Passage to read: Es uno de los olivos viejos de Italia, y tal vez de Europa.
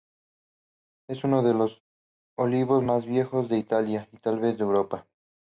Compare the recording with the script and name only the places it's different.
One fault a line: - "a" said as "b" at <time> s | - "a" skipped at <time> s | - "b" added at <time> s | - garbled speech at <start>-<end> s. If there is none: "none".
- "más" added at 2.8 s